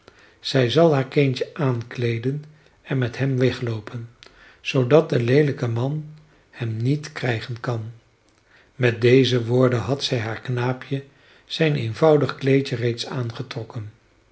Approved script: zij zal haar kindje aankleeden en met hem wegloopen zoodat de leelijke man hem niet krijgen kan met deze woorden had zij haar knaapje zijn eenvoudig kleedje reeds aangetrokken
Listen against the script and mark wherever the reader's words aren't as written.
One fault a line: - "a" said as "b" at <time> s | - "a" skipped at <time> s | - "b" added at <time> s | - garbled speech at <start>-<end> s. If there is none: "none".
none